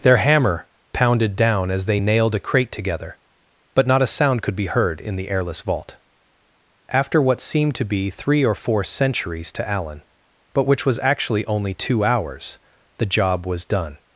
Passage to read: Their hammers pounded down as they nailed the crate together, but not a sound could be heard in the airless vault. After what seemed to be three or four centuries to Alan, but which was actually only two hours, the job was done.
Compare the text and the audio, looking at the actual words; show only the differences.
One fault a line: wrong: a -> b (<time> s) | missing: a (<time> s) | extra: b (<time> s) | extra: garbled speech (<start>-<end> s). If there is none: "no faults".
wrong: hammers -> hammer (0.2 s)
wrong: the -> a (2.3 s)